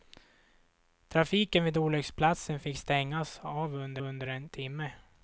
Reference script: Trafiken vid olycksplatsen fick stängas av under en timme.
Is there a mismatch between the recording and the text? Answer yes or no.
yes